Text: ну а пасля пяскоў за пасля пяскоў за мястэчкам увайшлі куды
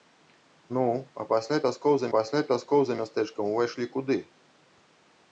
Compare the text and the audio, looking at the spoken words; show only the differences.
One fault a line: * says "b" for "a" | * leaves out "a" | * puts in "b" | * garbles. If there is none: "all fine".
all fine